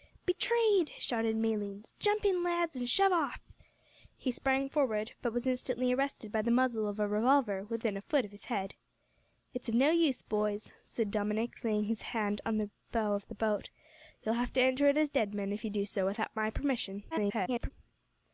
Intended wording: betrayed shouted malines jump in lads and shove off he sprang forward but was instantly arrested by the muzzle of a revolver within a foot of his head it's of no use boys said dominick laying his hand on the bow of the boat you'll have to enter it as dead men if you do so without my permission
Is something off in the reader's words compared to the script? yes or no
yes